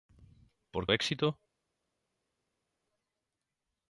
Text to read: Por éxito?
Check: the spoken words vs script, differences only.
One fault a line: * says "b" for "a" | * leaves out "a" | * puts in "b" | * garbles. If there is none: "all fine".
all fine